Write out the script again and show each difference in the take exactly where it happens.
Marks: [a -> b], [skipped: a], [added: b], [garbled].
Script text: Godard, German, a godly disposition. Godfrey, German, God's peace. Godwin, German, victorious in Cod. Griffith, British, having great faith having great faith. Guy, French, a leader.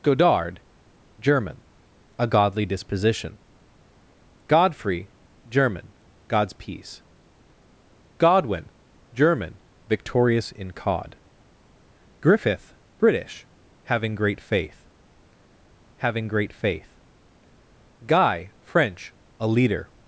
Godard, German, a godly disposition. Godfrey, German, God's peace. Godwin, German, victorious in Cod. Griffith, British, having great faith having great faith. Guy, French, a leader.